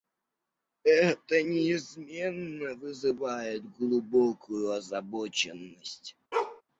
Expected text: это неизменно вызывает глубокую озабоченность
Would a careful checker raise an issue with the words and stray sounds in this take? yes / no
yes